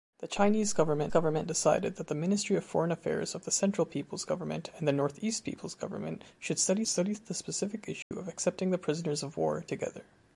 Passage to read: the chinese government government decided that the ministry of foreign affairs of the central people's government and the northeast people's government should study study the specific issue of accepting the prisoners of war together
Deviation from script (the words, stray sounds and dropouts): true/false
true